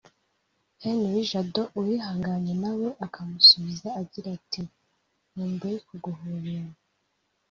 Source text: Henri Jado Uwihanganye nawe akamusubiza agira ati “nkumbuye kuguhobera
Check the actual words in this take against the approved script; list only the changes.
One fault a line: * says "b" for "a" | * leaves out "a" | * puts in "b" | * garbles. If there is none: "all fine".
all fine